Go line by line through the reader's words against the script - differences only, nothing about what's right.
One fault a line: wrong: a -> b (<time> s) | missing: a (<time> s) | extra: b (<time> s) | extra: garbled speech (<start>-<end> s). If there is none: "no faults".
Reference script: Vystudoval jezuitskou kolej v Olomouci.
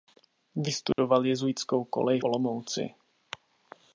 missing: v (2.2 s)